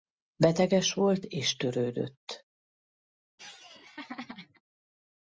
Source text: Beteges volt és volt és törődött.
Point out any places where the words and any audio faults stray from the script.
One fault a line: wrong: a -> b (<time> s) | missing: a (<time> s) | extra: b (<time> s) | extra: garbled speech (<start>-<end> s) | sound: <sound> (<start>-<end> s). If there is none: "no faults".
missing: volt és (1.6 s)
sound: laugh (3.4-4.6 s)